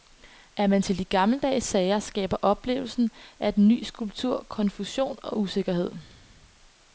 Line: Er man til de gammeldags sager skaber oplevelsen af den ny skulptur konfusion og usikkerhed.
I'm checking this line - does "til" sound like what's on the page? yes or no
yes